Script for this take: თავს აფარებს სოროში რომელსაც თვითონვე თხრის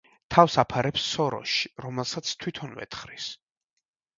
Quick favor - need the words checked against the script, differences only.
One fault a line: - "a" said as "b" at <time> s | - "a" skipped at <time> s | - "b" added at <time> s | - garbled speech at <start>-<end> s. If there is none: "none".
none